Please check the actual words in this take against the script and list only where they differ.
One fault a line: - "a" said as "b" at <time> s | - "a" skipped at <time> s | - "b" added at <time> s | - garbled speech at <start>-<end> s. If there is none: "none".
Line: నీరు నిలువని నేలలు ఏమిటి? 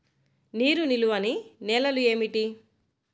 none